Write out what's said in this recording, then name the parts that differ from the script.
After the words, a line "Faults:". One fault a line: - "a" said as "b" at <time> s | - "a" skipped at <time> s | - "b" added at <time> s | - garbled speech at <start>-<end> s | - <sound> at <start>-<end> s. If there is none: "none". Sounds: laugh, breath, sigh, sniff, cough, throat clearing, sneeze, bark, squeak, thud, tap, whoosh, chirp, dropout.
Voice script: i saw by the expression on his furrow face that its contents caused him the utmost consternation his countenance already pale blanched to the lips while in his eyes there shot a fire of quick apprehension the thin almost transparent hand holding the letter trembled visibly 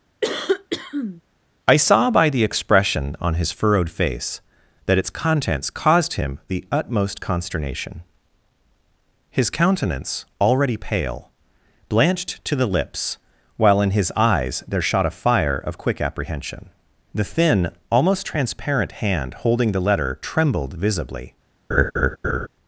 i saw by the expression on his furrowed face that its contents caused him the utmost consternation his countenance already pale blanched to the lips while in his eyes there shot a fire of quick apprehension the thin almost transparent hand holding the letter trembled visibly
Faults:
- cough at 0.2-1.2 s
- "furrow" said as "furrowed" at 3.5 s
- laugh at 21.7-22.5 s